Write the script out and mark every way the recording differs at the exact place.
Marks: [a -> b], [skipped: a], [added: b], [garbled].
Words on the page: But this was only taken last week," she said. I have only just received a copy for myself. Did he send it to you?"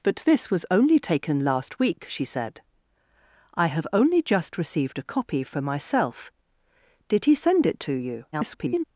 But this was only taken last week," she said. I have only just received a copy for myself. Did he send it to you?" [garbled]